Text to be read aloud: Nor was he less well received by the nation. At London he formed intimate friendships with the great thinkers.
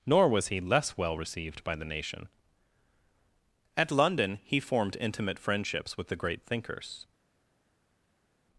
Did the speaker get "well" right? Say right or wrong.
right